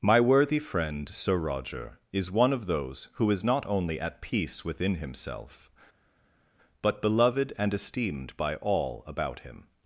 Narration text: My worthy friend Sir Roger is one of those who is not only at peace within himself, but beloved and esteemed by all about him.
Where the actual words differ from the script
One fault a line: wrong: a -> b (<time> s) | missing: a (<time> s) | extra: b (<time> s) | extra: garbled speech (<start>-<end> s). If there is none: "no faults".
no faults